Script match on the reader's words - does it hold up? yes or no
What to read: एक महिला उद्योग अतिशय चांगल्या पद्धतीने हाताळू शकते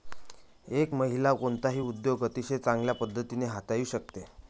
no